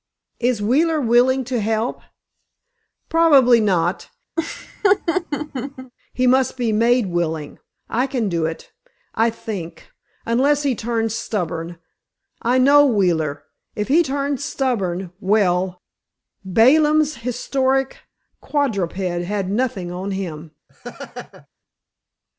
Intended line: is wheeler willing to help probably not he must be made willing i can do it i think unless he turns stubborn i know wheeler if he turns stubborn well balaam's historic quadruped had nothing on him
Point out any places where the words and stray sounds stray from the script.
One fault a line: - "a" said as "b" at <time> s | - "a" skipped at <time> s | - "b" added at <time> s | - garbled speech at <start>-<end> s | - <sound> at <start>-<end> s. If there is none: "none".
- laugh at 4.4-5.9 s
- laugh at 20.7-21.5 s